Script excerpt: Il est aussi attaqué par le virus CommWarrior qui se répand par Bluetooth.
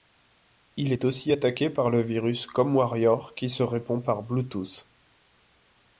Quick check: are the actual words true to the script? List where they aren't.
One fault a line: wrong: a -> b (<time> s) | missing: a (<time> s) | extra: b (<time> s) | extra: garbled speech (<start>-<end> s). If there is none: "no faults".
no faults